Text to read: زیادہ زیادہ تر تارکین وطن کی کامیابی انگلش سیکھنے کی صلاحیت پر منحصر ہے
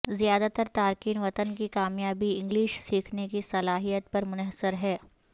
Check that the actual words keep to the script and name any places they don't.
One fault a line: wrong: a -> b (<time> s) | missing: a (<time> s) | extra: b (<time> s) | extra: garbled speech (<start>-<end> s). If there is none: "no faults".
missing: زیادہ (0.5 s)